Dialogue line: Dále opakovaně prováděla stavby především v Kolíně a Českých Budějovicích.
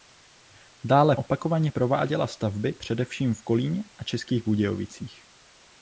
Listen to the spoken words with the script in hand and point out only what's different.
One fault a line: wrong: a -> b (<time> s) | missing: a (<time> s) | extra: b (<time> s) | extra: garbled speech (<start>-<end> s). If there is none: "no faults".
no faults